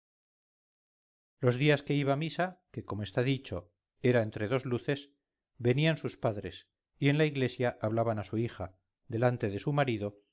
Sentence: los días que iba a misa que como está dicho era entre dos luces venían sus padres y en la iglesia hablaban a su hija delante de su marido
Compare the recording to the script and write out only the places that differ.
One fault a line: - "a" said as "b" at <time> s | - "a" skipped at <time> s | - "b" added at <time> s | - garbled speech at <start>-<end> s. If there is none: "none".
none